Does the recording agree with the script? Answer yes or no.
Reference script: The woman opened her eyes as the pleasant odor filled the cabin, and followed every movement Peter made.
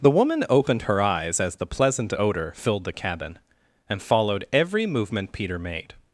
yes